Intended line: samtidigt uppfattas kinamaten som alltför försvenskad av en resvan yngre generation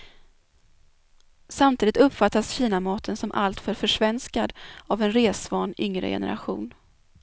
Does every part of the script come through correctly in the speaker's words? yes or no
yes